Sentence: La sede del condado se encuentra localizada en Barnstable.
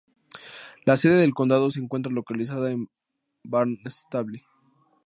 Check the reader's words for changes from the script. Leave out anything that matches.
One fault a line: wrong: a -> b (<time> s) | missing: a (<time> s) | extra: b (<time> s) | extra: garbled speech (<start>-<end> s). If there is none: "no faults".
no faults